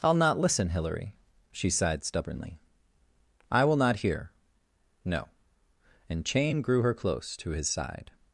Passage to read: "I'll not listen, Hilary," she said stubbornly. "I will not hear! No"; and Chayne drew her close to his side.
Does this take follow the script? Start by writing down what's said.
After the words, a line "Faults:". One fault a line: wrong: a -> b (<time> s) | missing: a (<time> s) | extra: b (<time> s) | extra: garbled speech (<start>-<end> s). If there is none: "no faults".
"I'll not listen, Hilary," she sighed stubbornly. "I will not hear! No"; and Chayne grew her close to his side.
Faults:
wrong: said -> sighed (1.7 s)
wrong: drew -> grew (6.6 s)